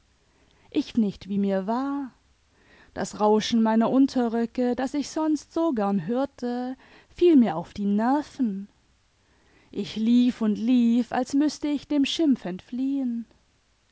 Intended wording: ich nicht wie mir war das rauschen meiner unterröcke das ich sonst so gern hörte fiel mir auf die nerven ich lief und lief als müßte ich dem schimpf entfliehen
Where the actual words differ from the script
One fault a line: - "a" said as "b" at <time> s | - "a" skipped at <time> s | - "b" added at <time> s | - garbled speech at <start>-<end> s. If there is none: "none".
none